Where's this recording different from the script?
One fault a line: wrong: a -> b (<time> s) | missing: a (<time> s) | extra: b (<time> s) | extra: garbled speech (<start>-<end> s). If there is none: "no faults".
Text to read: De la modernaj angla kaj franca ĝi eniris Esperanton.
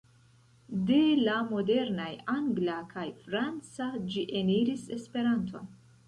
no faults